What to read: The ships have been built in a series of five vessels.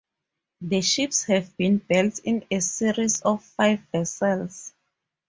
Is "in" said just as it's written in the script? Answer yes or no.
yes